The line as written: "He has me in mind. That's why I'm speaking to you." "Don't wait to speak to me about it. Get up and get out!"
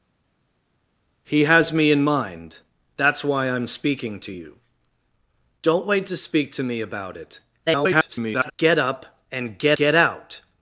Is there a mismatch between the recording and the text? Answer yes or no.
yes